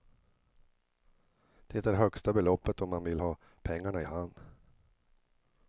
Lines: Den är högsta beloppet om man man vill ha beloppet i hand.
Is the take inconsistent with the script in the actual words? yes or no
yes